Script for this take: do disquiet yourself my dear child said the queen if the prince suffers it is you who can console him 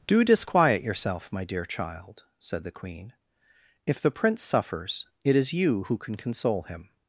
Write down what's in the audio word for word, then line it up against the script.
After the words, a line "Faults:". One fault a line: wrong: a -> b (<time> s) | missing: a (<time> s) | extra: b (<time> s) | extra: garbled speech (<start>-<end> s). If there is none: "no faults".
do disquiet yourself my dear child said the queen if the prince suffers it is you who can console him
Faults:
no faults